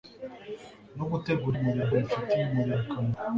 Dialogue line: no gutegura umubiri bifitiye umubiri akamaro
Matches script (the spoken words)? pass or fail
pass